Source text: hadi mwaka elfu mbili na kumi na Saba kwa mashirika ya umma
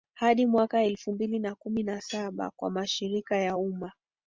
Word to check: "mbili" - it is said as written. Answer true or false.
true